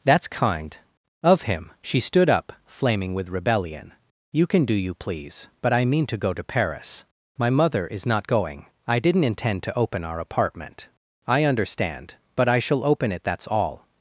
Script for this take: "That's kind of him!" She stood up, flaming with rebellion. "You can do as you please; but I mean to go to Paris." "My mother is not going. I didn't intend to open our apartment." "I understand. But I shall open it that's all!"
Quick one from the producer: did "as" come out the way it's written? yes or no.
no